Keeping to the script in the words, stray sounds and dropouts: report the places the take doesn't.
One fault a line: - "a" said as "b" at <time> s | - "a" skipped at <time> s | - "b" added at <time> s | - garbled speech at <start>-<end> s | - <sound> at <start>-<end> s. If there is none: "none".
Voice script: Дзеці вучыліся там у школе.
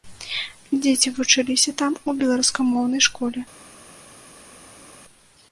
- "беларускамоўнай" added at 2.2 s